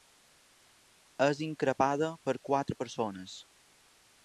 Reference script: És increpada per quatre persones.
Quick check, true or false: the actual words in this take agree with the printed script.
true